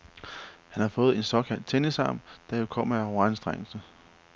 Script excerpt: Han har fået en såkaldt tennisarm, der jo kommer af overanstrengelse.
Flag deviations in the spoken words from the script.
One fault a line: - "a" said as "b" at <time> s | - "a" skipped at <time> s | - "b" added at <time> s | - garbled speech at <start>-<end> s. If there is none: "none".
none